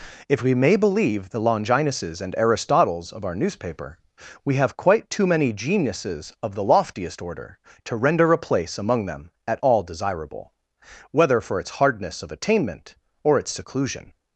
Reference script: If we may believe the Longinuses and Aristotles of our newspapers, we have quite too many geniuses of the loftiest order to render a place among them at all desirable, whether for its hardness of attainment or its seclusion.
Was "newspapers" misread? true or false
true